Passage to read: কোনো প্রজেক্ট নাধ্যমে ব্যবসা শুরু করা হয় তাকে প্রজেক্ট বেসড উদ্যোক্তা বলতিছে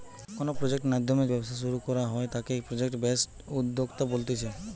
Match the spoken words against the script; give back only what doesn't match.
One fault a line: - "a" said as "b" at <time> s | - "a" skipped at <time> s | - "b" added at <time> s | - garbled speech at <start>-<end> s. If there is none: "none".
none